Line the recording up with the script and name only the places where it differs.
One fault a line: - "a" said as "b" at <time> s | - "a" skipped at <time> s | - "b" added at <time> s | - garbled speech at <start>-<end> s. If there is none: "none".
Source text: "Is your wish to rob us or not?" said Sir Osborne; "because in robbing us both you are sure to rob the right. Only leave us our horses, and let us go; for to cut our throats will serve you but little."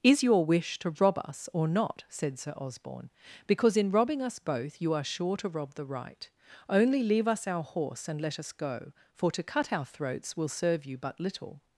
- "horses" said as "horse" at 7.6 s